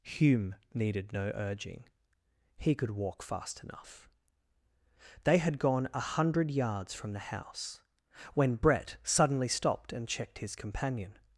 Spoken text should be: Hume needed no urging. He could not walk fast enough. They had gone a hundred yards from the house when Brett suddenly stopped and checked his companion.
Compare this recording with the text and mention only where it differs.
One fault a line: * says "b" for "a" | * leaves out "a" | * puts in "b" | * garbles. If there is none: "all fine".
* leaves out "not"